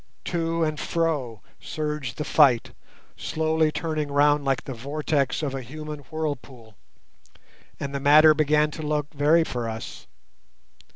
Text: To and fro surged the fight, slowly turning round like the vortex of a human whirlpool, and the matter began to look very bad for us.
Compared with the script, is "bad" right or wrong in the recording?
wrong